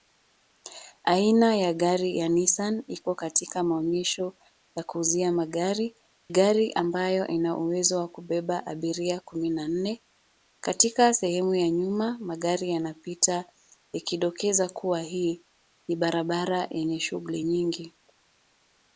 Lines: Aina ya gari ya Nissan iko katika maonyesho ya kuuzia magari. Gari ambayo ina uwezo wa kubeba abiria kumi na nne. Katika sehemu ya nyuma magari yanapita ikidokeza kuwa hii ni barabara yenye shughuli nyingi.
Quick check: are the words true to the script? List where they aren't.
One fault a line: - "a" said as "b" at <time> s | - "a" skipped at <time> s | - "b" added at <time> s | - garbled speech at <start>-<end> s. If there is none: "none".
none